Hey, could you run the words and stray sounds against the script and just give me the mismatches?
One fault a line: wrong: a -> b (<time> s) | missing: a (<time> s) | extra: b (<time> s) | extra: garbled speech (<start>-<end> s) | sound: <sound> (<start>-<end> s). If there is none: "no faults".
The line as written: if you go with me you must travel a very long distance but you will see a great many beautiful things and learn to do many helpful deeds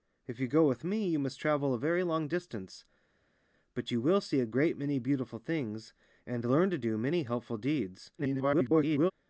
extra: garbled speech (8.2-9.1 s)